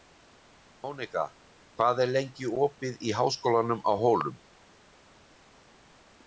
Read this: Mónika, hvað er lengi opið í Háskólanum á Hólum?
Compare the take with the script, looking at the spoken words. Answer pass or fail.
pass